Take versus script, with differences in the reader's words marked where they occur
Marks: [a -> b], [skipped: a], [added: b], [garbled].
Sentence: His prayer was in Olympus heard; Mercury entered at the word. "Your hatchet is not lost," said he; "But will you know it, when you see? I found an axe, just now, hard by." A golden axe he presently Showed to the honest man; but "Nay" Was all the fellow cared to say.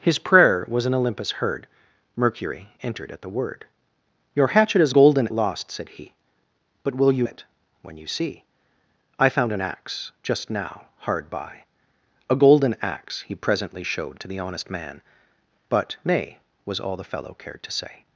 His prayer was in Olympus heard; Mercury entered at the word. "Your hatchet is [not -> golden] lost," said he; "But will you [skipped: know] it, when you see? I found an axe, just now, hard by." A golden axe he presently Showed to the honest man; but "Nay" Was all the fellow cared to say.